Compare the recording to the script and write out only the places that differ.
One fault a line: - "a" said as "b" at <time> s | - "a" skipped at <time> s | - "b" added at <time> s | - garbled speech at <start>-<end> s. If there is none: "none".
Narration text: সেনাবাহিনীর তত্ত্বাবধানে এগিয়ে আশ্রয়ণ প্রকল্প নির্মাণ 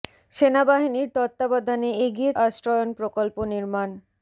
none